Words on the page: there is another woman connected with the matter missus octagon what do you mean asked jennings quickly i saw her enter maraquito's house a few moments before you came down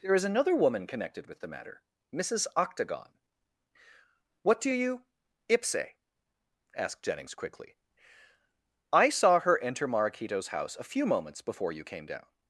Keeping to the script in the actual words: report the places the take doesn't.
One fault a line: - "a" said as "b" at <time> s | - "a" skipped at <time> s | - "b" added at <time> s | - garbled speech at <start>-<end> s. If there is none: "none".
- "mean" said as "ipse" at 5.5 s